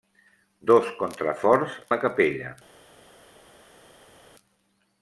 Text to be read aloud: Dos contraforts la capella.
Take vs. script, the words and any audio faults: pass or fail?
pass